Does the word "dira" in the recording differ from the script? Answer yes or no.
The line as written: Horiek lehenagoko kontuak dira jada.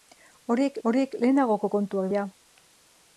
yes